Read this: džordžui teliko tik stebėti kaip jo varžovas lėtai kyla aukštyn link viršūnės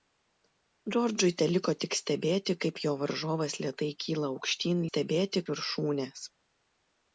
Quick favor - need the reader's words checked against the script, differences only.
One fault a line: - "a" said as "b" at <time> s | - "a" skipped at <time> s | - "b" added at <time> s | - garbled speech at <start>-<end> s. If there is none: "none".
- "link" said as "stebėti" at 4.9 s